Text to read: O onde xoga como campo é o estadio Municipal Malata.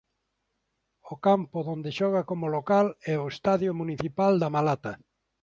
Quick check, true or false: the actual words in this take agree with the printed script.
false